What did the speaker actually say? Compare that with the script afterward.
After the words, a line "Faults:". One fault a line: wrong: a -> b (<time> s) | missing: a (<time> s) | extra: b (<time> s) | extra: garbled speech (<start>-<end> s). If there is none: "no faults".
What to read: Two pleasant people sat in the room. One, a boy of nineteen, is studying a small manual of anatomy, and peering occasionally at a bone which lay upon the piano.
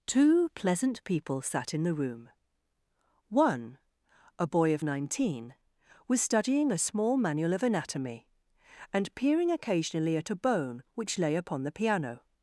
Two pleasant people sat in the room. One, a boy of nineteen, was studying a small manual of anatomy, and peering occasionally at a bone which lay upon the piano.
Faults:
wrong: is -> was (6.1 s)